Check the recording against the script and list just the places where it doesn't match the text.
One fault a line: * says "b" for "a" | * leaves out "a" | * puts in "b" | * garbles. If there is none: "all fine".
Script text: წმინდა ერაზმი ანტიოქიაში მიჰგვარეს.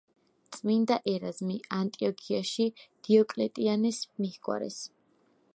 * puts in "დიოკლეტიანეს"